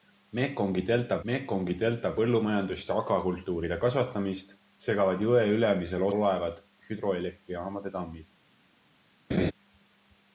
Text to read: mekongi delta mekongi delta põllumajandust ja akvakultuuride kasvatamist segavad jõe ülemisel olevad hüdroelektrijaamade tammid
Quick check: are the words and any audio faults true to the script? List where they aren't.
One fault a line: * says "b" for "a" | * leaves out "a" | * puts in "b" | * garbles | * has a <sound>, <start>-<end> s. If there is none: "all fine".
* has a laugh, 9.3-9.5 s